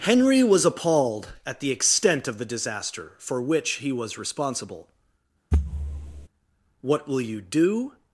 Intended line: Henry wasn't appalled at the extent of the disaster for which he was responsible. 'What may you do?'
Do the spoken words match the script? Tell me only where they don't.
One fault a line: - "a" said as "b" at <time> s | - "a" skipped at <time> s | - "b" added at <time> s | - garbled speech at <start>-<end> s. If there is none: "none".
- "wasn't" said as "was" at 0.4 s
- "may" said as "will" at 7.1 s